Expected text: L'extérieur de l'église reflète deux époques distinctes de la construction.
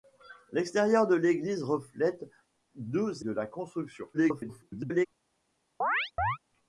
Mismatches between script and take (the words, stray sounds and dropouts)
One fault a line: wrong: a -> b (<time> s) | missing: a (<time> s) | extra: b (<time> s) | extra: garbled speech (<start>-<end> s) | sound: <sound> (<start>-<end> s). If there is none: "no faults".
missing: époques distinctes (3.2 s)
extra: garbled speech (4.1-5.1 s)
sound: chirp (5.8-6.4 s)